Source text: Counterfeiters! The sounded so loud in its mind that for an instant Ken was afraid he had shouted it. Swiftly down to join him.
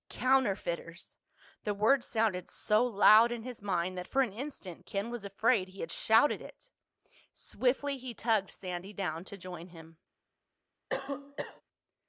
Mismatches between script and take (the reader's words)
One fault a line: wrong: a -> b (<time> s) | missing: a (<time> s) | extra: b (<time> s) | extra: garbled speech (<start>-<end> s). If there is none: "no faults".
extra: word (1.8 s)
wrong: its -> his (3.4 s)
extra: he tugged Sandy (8.0 s)